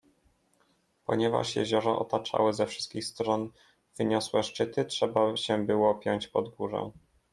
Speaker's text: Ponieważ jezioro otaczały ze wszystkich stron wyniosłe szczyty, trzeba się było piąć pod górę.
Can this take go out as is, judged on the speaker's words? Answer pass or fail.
pass